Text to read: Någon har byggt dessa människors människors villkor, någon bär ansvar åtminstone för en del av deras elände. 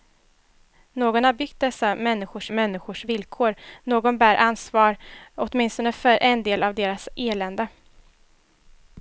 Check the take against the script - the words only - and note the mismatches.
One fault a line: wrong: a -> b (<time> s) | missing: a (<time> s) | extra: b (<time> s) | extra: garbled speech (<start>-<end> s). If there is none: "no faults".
no faults